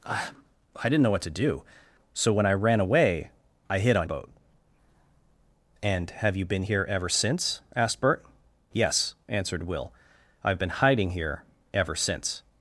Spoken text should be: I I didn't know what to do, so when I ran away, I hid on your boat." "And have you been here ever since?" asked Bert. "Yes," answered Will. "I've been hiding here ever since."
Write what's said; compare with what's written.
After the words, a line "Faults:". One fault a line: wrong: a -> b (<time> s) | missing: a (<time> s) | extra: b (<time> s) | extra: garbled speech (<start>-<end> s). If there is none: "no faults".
I I didn't know what to do, so when I ran away, I hid on boat." "And have you been here ever since?" asked Bert. "Yes," answered Will. "I've been hiding here ever since."
Faults:
missing: your (4.1 s)